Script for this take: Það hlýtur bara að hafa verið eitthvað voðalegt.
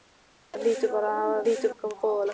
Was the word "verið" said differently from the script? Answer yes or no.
yes